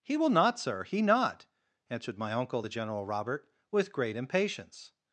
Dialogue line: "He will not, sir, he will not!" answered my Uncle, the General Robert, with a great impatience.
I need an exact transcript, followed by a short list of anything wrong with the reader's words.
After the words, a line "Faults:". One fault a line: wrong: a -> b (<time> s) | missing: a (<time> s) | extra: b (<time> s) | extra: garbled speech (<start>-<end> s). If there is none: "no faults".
"He will not, sir, he not!" answered my Uncle, the General Robert, with great impatience.
Faults:
missing: will (1.0 s)
missing: a (3.9 s)